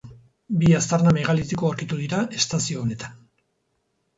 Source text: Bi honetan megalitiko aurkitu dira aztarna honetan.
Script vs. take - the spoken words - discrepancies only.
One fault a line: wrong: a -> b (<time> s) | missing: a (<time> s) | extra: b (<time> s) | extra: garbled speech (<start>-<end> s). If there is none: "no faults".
wrong: honetan -> aztarna (0.8 s)
wrong: aztarna -> estazio (2.4 s)